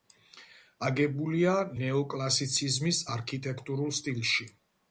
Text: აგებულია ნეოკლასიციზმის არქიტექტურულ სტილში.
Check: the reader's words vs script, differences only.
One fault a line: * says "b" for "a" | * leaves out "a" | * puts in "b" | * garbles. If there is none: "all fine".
all fine